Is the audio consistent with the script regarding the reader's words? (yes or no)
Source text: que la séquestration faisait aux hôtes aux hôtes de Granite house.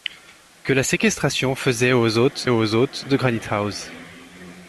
yes